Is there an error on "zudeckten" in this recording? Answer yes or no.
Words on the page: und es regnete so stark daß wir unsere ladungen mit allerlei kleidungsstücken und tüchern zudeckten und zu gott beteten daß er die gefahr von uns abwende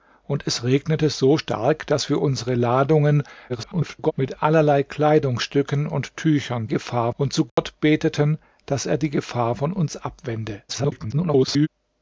yes